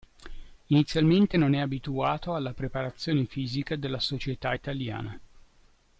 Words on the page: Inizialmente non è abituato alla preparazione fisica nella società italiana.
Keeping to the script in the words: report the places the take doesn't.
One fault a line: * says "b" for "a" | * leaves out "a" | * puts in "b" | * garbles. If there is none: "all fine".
* says "della" for "nella"